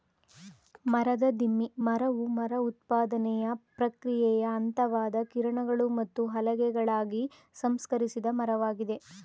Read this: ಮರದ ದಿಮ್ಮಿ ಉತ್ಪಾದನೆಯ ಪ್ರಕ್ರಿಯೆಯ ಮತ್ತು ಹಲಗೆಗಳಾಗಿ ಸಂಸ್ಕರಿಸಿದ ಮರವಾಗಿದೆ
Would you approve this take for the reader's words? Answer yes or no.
no